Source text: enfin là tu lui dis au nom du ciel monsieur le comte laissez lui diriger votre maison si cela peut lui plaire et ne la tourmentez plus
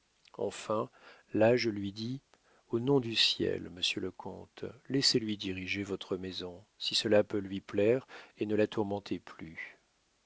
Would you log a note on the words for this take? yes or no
yes